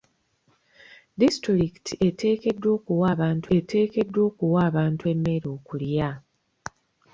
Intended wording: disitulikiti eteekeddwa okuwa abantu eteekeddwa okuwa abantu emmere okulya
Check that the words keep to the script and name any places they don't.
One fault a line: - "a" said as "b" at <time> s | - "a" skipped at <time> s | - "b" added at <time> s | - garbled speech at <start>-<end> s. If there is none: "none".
none